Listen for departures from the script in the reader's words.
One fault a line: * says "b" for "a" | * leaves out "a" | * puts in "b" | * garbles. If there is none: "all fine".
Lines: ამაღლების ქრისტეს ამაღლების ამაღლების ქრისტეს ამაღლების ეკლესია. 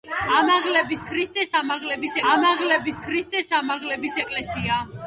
all fine